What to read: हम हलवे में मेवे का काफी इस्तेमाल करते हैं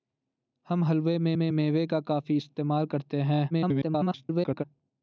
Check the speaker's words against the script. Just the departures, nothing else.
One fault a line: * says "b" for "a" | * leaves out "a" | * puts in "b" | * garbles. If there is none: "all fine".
* puts in "में"
* garbles